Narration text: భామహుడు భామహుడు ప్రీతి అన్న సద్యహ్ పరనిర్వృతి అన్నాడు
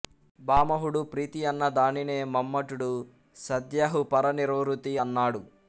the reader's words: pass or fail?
fail